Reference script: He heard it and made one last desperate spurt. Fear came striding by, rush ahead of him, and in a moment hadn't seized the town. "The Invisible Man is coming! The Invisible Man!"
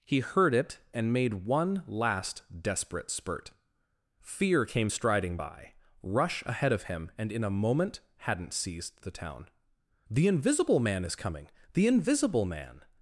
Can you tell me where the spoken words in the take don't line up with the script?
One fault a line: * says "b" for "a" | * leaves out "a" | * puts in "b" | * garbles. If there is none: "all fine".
all fine